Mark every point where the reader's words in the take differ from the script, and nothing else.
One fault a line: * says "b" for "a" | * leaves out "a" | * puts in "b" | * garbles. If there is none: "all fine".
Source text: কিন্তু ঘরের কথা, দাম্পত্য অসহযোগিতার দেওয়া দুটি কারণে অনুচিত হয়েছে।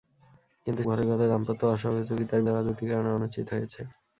all fine